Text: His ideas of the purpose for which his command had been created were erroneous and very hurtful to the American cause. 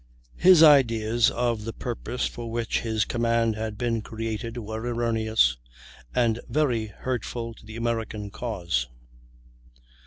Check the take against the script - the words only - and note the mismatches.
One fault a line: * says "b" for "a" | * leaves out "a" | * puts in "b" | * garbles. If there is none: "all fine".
all fine